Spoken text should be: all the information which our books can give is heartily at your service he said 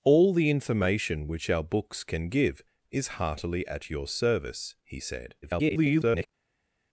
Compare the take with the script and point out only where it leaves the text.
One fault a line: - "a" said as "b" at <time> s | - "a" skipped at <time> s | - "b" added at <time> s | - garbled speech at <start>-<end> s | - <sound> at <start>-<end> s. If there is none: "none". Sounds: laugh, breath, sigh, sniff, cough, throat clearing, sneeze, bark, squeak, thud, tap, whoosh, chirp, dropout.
- garbled speech at 5.4-6.3 s